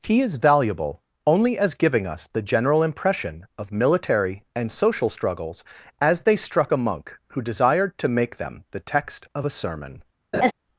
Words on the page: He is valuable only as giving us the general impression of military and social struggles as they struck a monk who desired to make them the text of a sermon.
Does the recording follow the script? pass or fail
pass